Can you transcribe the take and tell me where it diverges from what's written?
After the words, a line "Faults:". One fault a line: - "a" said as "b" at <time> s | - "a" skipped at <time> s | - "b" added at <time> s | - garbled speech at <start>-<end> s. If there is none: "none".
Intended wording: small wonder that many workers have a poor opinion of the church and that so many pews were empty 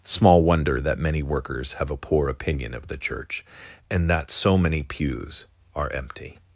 small wonder that many workers have a poor opinion of the church and that so many pews are empty
Faults:
- "were" said as "are" at 5.8 s